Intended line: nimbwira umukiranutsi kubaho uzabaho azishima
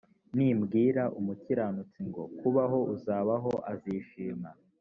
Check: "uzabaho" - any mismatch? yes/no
no